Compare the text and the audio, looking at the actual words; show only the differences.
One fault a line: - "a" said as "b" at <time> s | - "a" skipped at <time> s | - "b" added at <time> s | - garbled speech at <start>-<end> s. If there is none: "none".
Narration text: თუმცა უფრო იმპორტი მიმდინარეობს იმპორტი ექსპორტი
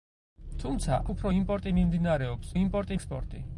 none